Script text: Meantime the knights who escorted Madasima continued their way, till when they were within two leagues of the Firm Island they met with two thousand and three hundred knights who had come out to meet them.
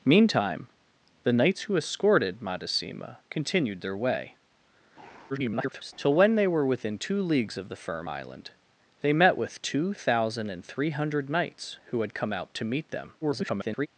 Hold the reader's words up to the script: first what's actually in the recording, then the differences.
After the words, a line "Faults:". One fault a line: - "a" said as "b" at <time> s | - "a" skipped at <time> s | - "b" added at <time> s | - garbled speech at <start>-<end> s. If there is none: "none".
Meantime the knights who escorted Madasima continued their way, [garbled] till when they were within two leagues of the Firm Island they met with two thousand and three hundred knights who had come out to meet them. [garbled]
Faults:
- garbled speech at 5.3-5.9 s
- garbled speech at 13.2-13.9 s